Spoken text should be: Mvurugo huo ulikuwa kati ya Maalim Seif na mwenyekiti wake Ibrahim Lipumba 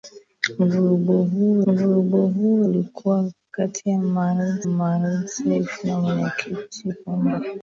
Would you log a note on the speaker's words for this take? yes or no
yes